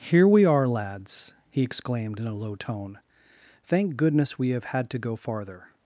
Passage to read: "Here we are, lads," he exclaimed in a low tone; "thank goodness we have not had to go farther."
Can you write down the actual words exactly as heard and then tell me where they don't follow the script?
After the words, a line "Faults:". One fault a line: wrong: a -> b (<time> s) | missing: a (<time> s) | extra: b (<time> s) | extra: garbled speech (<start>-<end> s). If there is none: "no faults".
"Here we are, lads," he exclaimed in a low tone; "thank goodness we have had to go farther."
Faults:
missing: not (4.7 s)